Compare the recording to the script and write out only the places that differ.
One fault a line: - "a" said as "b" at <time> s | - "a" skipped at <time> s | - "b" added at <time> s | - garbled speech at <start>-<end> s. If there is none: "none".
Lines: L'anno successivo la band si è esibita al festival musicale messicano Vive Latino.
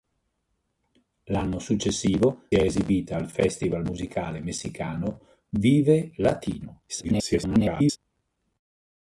- "la band si" skipped at 2.5 s
- garbled speech at 6.9-8.0 s